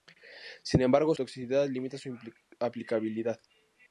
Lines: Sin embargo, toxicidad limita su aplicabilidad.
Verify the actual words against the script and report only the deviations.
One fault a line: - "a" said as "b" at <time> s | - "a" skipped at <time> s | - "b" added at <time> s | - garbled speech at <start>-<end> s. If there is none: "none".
none